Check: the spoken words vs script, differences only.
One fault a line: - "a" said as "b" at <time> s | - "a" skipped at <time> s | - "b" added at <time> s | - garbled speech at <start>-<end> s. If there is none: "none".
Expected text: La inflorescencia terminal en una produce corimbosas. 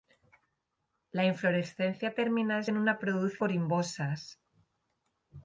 none